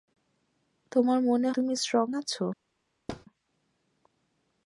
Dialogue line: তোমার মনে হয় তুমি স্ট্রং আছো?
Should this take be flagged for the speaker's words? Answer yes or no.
yes